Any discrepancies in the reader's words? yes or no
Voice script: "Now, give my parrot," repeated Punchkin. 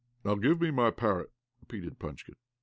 yes